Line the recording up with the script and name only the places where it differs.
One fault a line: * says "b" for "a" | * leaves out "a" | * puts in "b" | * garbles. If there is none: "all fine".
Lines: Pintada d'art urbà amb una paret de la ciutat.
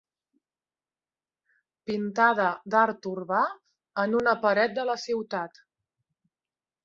* says "en" for "amb"